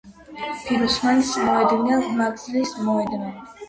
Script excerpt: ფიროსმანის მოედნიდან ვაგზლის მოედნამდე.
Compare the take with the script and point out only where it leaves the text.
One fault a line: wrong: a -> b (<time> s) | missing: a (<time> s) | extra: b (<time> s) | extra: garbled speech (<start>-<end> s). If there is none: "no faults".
no faults